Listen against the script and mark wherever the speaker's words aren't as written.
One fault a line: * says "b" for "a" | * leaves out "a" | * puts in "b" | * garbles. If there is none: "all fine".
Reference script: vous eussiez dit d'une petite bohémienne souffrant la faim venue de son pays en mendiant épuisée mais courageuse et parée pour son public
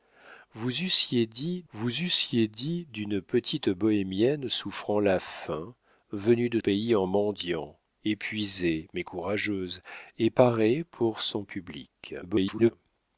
* puts in "vous eussiez dit"
* leaves out "son"
* garbles